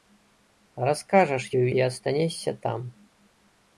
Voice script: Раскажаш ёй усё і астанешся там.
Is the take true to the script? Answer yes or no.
no